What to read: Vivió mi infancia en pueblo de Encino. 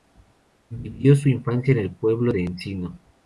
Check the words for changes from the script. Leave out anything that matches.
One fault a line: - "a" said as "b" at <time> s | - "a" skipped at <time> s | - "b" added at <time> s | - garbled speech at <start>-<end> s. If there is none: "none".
- "mi" said as "su" at 1.1 s
- "el" added at 1.8 s